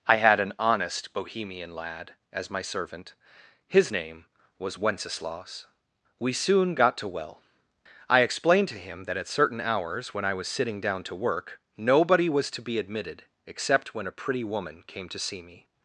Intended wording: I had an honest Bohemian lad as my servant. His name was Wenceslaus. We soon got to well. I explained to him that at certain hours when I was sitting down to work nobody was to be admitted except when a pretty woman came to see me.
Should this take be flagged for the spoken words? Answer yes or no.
no